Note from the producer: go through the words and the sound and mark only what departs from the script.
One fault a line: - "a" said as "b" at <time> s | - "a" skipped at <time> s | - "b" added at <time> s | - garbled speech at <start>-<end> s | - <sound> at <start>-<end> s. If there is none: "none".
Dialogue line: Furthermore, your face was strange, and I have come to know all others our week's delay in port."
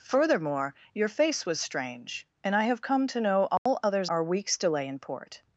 - dropout at 3.6-3.7 s